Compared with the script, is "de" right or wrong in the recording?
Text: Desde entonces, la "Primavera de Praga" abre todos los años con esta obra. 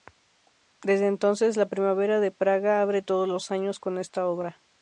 right